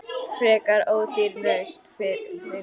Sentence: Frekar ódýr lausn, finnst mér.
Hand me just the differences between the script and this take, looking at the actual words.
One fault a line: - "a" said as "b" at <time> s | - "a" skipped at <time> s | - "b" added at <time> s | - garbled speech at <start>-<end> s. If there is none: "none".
none